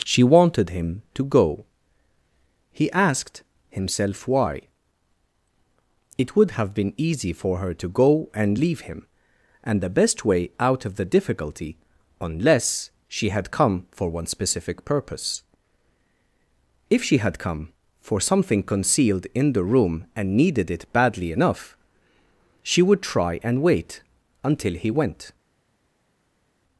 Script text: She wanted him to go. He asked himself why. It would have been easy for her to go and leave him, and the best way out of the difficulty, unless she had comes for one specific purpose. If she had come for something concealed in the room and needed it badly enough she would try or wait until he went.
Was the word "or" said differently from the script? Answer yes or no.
yes